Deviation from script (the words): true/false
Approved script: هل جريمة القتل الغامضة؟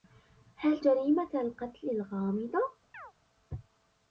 false